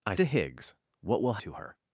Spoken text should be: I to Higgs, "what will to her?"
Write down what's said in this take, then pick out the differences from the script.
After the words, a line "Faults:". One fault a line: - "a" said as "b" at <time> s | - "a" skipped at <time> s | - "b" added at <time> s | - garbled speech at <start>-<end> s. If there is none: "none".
I to Higgs, "what will to her?"
Faults:
none